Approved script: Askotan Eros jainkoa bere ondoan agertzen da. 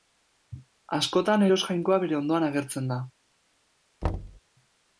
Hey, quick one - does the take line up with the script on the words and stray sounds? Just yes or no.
no